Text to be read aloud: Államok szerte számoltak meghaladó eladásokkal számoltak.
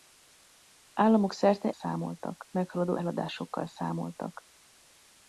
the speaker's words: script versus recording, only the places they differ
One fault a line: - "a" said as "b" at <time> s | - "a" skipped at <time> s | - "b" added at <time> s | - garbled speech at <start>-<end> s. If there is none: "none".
none